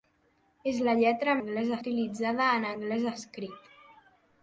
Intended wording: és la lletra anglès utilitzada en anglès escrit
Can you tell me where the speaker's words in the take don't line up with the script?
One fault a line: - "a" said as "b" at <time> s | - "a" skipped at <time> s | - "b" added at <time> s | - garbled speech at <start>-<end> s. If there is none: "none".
none